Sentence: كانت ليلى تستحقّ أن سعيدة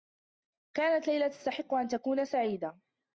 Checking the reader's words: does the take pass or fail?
fail